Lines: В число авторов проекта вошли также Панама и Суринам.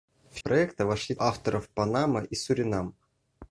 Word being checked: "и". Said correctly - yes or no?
yes